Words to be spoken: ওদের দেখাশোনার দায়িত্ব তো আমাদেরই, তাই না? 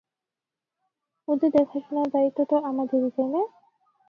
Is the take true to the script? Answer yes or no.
yes